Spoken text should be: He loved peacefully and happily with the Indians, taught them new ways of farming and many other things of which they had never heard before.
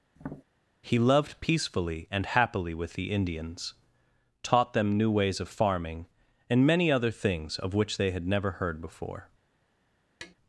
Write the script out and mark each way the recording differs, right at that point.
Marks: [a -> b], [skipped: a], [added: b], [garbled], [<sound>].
[tap] He loved peacefully and happily with the Indians, taught them new ways of farming and many other things of which they had never heard before. [tap]